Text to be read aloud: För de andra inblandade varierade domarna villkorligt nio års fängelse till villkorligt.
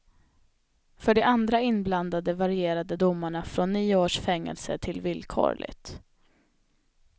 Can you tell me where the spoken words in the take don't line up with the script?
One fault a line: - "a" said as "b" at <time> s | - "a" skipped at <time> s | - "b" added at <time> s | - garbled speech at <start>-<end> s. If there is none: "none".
- "villkorligt" said as "från" at 3.4 s